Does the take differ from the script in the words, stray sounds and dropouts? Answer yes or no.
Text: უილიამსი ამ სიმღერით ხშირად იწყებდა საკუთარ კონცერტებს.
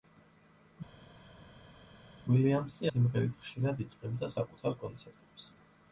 yes